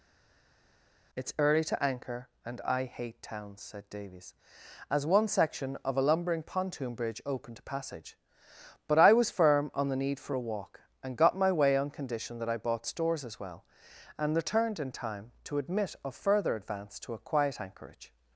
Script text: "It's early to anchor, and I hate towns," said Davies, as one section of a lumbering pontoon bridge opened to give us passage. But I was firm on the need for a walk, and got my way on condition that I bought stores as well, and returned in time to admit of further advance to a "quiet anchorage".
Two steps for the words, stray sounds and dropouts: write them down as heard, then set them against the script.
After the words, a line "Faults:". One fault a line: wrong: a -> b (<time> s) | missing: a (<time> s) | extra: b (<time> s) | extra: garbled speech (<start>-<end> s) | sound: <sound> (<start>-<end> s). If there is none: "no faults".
"It's early to anchor, and I hate towns," said Davies, as one section of a lumbering pontoon bridge opened to passage. But I was firm on the need for a walk, and got my way on condition that I bought stores as well, and returned in time to admit of further advance to a "quiet anchorage".
Faults:
missing: give us (7.6 s)